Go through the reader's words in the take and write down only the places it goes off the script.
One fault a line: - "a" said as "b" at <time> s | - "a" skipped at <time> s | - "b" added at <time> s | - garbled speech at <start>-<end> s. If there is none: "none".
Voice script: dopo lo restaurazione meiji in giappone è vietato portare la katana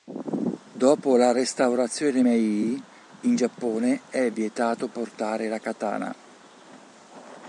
- "lo" said as "la" at 1.1 s